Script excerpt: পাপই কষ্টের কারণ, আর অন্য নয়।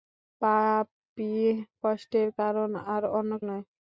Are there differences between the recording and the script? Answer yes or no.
no